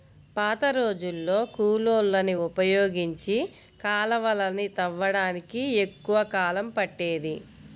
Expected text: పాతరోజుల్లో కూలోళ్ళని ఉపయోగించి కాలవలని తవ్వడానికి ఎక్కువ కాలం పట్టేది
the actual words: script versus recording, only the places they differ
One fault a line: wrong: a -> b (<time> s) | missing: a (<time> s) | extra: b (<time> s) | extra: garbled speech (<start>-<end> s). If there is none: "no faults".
no faults